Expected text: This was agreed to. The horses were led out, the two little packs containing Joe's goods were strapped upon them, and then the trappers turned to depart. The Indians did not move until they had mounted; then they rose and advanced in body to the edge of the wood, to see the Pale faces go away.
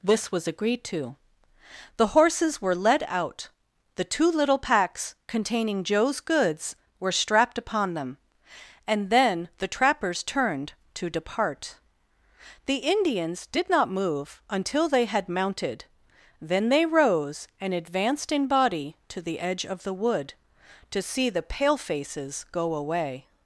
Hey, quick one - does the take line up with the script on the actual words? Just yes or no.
yes